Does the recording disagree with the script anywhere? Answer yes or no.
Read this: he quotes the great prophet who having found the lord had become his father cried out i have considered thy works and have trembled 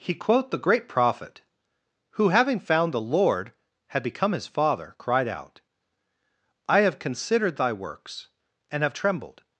yes